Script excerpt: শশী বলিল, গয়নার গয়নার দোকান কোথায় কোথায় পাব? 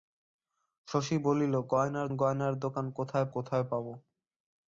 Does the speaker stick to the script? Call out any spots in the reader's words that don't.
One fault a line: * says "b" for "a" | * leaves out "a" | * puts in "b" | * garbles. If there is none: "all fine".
all fine